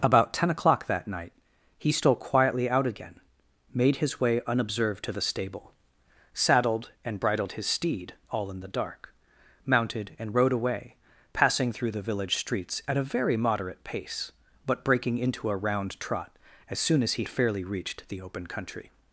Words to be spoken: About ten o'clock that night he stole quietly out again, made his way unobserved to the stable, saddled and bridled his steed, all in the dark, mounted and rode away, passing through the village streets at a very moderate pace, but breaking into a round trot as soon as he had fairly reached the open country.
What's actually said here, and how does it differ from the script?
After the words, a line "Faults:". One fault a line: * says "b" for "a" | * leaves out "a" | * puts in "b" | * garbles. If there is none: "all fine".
About ten o'clock that night he stole quietly out again, made his way unobserved to the stable, saddled and bridled his steed, all in the dark, mounted and rode away, passing through the village streets at a very moderate pace, but breaking into a round trot as soon as he fairly reached the open country.
Faults:
* leaves out "had"